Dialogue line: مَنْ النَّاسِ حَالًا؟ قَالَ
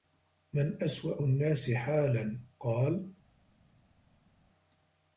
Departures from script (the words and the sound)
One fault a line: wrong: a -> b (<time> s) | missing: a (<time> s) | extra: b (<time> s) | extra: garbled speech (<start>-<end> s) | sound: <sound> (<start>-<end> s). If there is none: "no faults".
extra: أَسْوَأُ (0.8 s)